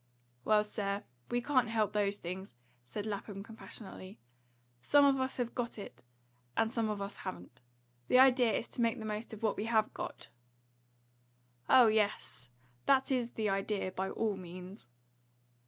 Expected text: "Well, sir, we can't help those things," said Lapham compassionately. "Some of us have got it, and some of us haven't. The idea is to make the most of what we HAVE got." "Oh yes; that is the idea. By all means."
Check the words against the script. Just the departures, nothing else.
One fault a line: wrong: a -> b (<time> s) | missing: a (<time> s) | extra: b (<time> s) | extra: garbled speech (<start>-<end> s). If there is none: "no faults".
no faults